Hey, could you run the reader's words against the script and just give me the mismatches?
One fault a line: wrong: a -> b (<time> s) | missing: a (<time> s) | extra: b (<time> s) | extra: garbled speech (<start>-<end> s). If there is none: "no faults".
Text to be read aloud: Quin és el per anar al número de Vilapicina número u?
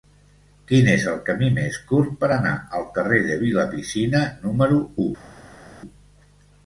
extra: camí més curt (1.2 s)
wrong: número -> carrer (3.0 s)